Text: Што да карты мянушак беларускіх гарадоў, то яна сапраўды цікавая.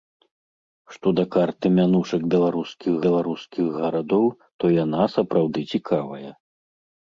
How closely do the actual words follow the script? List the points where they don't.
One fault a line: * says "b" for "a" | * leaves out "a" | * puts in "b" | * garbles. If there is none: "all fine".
* puts in "беларускіх"